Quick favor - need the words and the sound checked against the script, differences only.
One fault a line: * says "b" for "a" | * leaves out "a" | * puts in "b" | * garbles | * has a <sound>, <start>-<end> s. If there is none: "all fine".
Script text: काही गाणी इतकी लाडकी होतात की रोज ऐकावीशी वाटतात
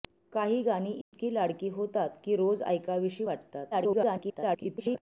* has a dropout, 1.0-1.1 s
* garbles